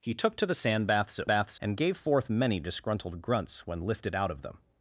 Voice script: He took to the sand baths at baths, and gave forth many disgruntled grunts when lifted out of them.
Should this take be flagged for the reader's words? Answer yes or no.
no